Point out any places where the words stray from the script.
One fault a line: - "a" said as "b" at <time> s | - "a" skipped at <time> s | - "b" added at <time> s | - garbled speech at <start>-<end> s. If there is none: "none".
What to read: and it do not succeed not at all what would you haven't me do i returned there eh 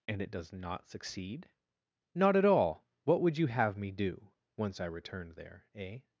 - "do" said as "does" at 0.3 s
- "haven't" said as "have" at 3.5 s
- "once" added at 4.6 s